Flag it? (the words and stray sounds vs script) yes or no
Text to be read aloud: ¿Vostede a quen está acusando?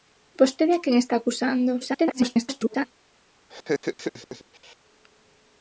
yes